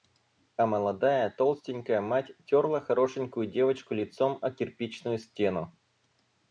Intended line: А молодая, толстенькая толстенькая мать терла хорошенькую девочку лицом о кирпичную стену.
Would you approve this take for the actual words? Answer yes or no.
no